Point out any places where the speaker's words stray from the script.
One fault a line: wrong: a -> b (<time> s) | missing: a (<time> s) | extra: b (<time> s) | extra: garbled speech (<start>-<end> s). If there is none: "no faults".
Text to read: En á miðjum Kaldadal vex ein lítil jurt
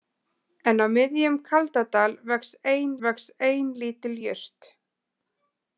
extra: vex ein (3.1 s)